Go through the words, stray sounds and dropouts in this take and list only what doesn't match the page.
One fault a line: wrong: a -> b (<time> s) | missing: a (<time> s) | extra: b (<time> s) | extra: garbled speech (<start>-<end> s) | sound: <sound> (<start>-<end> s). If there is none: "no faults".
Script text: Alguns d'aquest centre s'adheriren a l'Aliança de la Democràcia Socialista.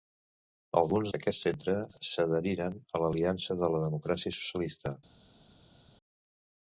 no faults